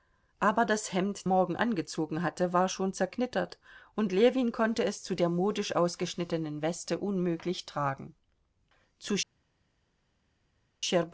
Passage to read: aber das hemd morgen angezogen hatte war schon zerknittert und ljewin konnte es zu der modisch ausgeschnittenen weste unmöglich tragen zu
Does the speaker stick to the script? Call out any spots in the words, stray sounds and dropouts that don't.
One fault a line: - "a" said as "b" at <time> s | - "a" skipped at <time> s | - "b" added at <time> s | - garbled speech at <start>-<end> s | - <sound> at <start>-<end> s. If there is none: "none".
none